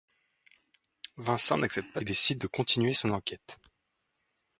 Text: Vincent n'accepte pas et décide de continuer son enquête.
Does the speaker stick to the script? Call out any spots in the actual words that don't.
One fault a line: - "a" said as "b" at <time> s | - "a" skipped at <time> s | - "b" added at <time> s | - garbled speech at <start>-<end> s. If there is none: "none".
none